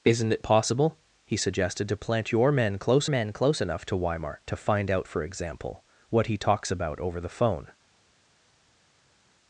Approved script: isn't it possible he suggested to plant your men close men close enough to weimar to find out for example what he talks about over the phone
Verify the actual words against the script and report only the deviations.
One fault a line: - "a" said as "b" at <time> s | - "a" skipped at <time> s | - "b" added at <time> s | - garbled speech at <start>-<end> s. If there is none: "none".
none